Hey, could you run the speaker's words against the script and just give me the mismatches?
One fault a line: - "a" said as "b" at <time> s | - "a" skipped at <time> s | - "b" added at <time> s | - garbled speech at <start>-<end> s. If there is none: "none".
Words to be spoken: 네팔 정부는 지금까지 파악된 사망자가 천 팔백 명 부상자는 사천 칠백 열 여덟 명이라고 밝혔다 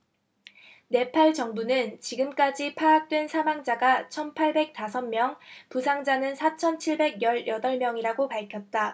- "다섯" added at 4.7 s